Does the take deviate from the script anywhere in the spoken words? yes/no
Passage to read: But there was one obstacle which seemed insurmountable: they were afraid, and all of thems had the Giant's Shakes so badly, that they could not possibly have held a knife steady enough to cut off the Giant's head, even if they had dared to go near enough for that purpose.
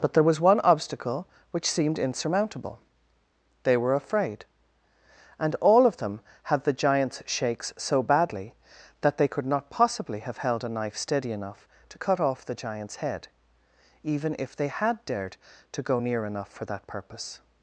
yes